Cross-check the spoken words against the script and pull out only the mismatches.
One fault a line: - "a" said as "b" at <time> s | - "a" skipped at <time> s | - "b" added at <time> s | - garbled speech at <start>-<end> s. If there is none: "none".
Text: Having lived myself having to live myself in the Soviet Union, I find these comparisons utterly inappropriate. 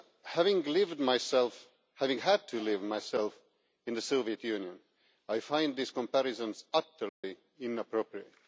- "had" added at 2.2 s